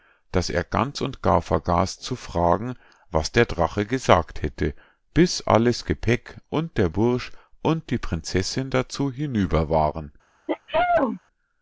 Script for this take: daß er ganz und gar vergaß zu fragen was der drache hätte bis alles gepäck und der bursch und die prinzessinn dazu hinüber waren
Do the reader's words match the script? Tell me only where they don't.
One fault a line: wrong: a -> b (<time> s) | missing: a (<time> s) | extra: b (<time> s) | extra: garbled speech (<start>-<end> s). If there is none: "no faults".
extra: gesagt (3.9 s)